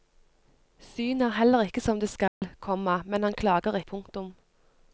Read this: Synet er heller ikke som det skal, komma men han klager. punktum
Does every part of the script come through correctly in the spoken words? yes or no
yes